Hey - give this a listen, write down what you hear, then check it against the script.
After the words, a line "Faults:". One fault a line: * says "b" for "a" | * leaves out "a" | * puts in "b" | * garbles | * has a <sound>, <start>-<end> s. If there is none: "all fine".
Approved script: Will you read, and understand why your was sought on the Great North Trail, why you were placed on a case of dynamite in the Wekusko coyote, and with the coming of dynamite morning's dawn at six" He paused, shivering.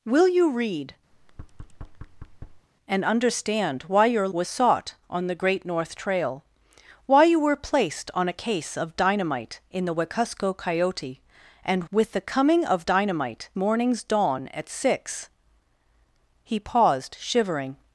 Will you read, and understand why your was sought on the Great North Trail, why you were placed on a case of dynamite in the Wekusko coyote, and with the coming of dynamite morning's dawn at six" He paused, shivering.
Faults:
* has a thud, 1.1-2.7 s